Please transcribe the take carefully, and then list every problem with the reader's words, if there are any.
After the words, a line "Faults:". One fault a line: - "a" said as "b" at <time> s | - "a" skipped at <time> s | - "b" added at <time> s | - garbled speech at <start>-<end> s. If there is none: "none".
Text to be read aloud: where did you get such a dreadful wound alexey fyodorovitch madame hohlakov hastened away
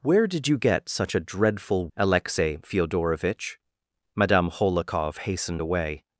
where did you get such a dreadful alexey fyodorovitch madame hohlakov hastened away
Faults:
- "wound" skipped at 1.9 s